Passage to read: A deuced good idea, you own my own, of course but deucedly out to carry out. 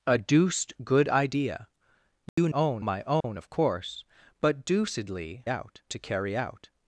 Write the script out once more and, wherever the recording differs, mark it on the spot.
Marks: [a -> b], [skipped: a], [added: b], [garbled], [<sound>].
A deuced good idea, you [dropout] own my own, [dropout] of course but deucedly out to carry out.